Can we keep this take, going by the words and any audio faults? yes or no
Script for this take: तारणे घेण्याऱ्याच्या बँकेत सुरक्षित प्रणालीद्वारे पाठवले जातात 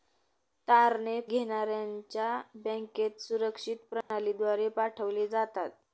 no